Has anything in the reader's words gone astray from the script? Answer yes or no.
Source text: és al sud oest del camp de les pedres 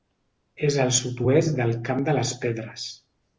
no